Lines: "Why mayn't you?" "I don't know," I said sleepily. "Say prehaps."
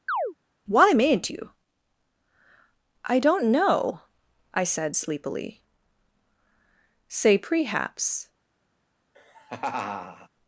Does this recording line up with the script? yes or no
yes